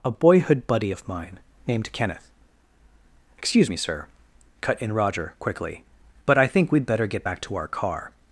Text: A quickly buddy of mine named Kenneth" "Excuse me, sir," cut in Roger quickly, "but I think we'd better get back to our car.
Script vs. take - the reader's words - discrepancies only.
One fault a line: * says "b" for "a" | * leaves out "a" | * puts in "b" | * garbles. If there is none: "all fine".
* says "boyhood" for "quickly"